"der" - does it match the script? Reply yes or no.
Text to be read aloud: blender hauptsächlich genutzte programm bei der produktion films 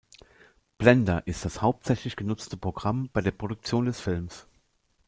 yes